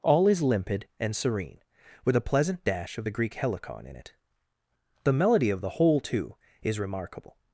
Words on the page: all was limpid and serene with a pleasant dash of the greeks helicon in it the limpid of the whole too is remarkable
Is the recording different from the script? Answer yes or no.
yes